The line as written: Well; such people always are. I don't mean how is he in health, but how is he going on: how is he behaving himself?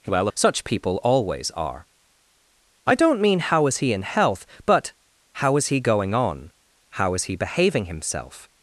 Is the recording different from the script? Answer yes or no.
no